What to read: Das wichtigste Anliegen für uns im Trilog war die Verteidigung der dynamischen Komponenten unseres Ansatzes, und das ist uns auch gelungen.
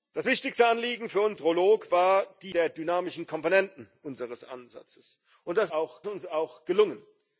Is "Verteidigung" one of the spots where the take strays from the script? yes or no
yes